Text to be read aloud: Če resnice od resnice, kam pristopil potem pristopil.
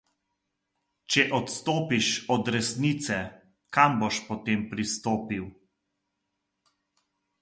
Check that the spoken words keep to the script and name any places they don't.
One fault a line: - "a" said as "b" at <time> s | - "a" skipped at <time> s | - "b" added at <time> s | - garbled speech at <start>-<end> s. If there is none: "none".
- "resnice" said as "odstopiš" at 1.4 s
- "pristopil" said as "boš" at 4.0 s